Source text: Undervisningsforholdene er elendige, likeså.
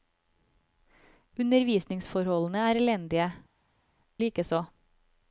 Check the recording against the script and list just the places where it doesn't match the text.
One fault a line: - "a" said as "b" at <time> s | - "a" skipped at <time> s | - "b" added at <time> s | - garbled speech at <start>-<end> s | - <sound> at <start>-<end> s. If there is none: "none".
none